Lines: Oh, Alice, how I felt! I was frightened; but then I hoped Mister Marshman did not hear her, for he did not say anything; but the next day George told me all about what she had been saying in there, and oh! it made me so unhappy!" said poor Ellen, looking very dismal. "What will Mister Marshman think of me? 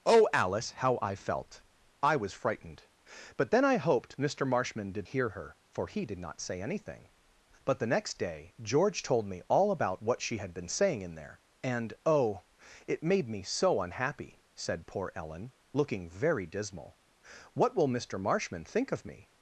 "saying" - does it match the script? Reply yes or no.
yes